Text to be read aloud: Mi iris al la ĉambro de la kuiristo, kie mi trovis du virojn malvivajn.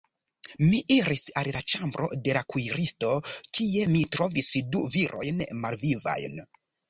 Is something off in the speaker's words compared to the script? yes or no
no